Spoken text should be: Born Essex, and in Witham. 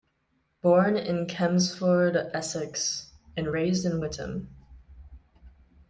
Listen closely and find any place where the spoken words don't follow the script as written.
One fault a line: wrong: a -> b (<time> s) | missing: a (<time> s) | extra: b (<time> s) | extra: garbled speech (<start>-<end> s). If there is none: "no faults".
extra: in Chelmsford (1.0 s)
extra: raised (3.5 s)